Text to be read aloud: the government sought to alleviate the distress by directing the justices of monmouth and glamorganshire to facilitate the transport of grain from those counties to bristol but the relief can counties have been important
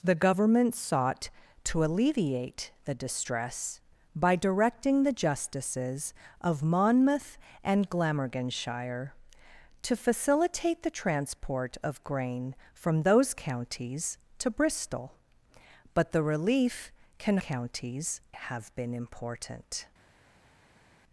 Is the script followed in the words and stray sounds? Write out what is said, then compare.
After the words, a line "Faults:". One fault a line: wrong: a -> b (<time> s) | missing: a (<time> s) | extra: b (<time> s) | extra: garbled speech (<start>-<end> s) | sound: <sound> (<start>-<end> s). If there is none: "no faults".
the government sought to alleviate the distress by directing the justices of monmouth and glamorganshire to facilitate the transport of grain from those counties to bristol but the relief can counties have been important
Faults:
no faults